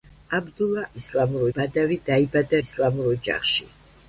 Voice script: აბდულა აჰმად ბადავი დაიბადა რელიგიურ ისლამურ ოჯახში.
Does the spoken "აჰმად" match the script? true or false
false